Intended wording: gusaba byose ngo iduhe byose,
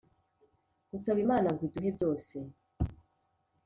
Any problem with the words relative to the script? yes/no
yes